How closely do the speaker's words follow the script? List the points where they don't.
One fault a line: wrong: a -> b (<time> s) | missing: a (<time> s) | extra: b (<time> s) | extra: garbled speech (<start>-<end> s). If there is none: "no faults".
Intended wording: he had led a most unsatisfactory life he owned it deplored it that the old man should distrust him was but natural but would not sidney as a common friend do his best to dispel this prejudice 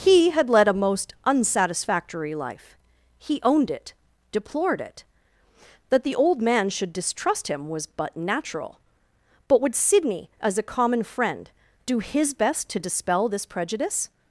missing: not (9.8 s)